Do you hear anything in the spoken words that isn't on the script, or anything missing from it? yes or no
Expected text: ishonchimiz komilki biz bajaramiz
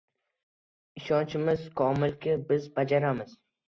no